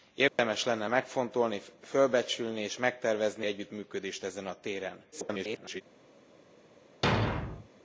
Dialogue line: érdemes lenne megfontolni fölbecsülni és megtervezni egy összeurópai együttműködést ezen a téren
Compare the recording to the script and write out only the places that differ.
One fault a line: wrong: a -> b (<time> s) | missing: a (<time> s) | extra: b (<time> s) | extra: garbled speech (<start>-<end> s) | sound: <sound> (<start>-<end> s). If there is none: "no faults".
sound: dropout (0.3-0.4 s)
missing: egy összeurópai (3.5 s)
extra: garbled speech (5.1-5.8 s)
sound: thud (7.0-7.7 s)